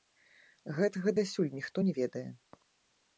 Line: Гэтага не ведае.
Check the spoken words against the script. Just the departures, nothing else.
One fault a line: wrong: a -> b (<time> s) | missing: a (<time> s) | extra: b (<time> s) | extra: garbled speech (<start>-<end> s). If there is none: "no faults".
extra: дасюль ніхто (1.2 s)